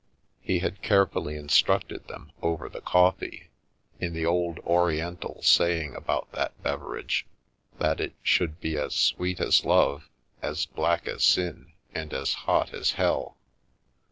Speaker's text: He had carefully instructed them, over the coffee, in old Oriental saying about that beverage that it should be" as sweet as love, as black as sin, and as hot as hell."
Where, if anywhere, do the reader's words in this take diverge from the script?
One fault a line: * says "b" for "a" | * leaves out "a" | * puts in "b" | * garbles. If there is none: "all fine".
* puts in "the"